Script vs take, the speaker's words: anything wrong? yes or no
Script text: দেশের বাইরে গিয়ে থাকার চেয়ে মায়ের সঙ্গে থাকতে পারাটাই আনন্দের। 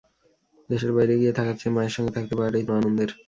no